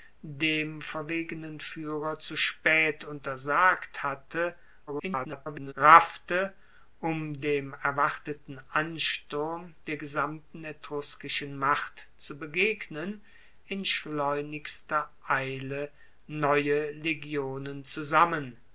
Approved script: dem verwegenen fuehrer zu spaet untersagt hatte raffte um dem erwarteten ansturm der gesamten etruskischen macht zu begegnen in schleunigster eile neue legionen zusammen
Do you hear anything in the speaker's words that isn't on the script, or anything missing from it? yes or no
yes